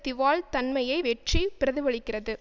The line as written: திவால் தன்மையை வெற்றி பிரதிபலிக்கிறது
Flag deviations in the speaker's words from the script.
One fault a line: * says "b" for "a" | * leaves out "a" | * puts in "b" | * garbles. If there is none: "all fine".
all fine